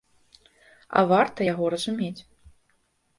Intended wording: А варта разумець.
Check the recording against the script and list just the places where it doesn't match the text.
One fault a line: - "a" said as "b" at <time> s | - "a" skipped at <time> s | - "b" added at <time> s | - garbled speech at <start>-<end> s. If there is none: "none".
- "яго" added at 1.5 s